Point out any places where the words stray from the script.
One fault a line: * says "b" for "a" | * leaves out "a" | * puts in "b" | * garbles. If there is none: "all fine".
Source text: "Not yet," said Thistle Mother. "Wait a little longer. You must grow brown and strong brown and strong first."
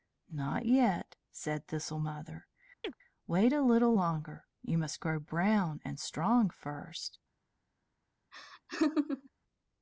* leaves out "brown and strong"